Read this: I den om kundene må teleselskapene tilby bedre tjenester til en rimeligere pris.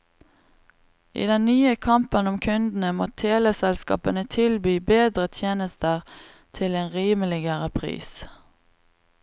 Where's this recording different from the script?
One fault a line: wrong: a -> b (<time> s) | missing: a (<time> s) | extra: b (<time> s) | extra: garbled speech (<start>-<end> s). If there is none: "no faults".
extra: nye kampen (1.4 s)